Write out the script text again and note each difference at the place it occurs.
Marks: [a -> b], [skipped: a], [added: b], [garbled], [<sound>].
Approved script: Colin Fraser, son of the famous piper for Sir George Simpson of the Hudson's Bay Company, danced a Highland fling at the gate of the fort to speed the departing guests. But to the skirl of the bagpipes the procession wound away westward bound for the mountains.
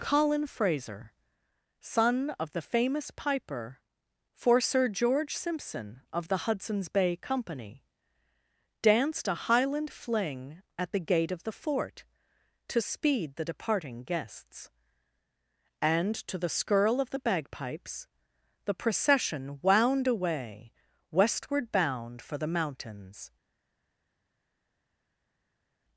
Colin Fraser, son of the famous piper for Sir George Simpson of the Hudson's Bay Company, danced a Highland fling at the gate of the fort to speed the departing guests. [But -> And] to the skirl of the bagpipes the procession wound away westward bound for the mountains.